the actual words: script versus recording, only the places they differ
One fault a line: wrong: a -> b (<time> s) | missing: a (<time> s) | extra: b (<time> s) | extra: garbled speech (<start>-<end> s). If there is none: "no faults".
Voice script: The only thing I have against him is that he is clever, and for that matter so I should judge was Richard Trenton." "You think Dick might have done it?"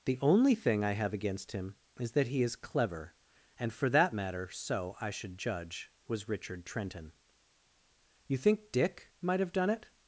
no faults